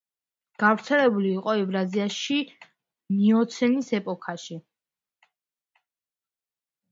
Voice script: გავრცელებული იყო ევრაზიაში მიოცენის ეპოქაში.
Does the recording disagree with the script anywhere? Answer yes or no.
no